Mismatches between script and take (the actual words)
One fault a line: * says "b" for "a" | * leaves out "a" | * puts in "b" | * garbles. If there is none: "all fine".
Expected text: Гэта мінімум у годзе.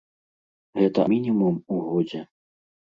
all fine